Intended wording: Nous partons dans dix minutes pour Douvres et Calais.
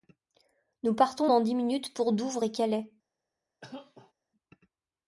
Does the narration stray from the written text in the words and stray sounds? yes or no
yes